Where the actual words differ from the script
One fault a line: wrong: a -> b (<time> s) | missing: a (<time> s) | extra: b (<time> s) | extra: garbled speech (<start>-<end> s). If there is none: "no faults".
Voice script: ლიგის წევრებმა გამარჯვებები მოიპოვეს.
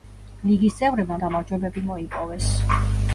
no faults